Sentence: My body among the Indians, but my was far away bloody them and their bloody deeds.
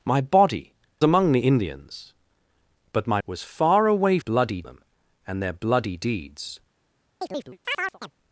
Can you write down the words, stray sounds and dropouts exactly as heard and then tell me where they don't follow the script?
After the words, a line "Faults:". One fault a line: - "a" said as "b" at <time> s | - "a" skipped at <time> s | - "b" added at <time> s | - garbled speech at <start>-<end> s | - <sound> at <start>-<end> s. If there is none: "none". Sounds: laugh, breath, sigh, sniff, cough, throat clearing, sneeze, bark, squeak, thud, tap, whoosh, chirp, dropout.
My body among the Indians, but my was far away bloody them and their bloody deeds.
Faults:
- chirp at 7.2-8.1 s